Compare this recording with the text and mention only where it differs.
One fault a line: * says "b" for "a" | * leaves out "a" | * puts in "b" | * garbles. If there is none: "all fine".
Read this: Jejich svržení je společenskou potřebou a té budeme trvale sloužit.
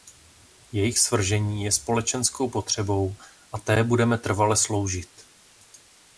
all fine